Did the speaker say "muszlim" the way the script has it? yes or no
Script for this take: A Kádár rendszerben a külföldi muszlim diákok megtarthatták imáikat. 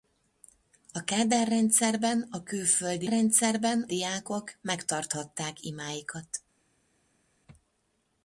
no